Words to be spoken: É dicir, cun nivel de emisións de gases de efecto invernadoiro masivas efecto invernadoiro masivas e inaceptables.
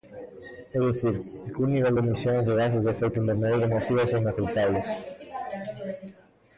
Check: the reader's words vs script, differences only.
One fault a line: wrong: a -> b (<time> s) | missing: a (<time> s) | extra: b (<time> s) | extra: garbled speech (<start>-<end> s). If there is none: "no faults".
missing: efecto invernadoiro masivas (4.1 s)